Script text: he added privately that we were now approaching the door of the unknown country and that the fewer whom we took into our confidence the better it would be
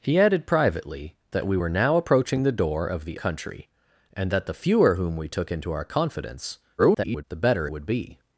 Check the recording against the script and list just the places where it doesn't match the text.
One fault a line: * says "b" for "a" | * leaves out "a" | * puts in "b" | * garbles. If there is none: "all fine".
* leaves out "unknown"
* garbles
* leaves out "it"